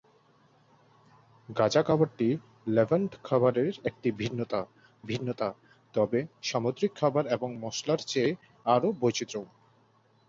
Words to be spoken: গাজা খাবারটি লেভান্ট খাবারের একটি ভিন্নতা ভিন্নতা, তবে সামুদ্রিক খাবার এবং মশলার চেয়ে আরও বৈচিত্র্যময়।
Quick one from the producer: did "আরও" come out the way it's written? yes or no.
yes